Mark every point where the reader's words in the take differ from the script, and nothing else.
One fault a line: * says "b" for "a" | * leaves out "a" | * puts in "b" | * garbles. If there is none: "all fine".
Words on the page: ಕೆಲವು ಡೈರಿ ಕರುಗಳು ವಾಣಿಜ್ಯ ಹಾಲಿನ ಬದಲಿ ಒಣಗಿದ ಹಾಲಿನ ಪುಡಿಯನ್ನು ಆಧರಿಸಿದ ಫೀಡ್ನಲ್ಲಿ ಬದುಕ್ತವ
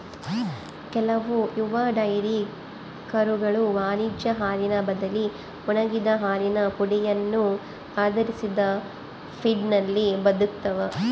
* puts in "ಯುವ"